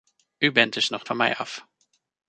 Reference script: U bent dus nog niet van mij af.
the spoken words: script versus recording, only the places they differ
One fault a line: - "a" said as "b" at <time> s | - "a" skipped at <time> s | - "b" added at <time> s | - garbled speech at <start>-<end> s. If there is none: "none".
- "niet" skipped at 1.1 s